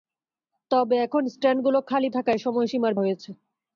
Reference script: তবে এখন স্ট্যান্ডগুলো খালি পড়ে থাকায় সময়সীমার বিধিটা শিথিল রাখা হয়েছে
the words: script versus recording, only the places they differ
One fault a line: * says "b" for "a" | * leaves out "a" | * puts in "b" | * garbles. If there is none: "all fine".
* leaves out "পড়ে"
* leaves out "বিধিটা শিথিল রাখা"